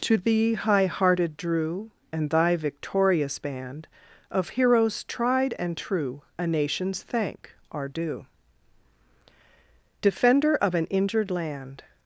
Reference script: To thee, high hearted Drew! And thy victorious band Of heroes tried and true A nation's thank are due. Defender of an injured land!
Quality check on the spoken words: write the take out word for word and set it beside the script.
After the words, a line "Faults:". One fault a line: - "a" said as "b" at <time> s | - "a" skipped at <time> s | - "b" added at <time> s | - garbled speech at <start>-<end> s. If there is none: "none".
To thee, high hearted Drew! And thy victorious band Of heroes tried and true A nation's thank are due. Defender of an injured land!
Faults:
none